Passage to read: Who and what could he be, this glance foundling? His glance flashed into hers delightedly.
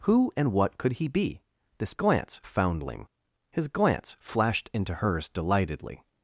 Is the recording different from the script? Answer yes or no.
no